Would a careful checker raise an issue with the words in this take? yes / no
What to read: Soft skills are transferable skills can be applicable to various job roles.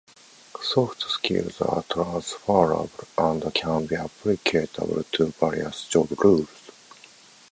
yes